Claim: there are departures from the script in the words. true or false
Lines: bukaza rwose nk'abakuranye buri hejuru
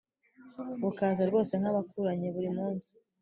true